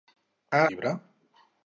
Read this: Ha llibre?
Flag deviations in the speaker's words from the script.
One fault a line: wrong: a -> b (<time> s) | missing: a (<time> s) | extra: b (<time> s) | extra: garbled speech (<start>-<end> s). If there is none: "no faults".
no faults